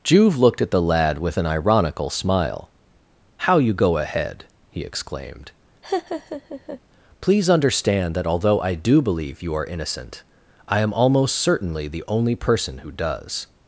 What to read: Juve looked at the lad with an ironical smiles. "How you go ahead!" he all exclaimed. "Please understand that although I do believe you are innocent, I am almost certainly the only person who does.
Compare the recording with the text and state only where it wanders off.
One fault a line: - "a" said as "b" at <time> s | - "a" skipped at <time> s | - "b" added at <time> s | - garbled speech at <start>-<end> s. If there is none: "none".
- "smiles" said as "smile" at 2.1 s
- "all" skipped at 4.8 s